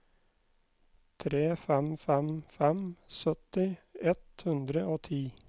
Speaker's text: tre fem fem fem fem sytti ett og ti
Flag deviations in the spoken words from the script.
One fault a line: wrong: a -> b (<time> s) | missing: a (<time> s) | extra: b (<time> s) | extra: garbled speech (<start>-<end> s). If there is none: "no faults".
missing: fem (3.0 s)
extra: hundre (4.5 s)